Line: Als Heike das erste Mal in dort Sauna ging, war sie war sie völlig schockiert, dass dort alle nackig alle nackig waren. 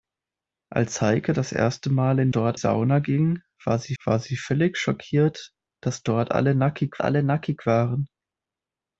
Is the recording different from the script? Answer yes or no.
no